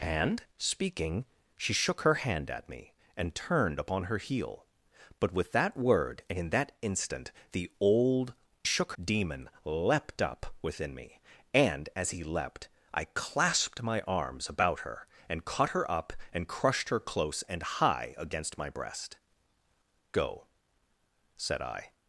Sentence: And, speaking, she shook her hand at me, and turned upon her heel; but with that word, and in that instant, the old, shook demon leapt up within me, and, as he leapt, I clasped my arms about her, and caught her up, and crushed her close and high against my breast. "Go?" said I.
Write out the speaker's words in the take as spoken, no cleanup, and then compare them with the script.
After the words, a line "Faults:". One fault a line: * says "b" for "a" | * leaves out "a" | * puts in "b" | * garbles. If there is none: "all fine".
And, speaking, she shook her hand at me, and turned upon her heel; but with that word, and in that instant, the old, shook demon leapt up within me, and, as he leapt, I clasped my arms about her, and caught her up, and crushed her close and high against my breast. "Go?" said I.
Faults:
all fine